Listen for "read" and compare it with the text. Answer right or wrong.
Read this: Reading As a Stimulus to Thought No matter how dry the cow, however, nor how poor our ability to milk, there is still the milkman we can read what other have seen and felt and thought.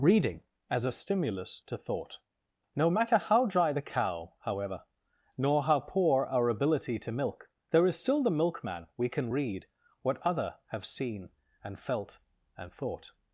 right